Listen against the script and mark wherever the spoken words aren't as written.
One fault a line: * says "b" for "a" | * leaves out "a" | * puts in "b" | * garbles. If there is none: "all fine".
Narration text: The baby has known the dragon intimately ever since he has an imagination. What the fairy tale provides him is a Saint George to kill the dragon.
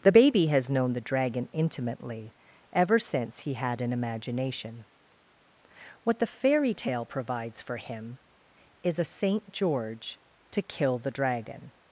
* says "had" for "has"
* puts in "for"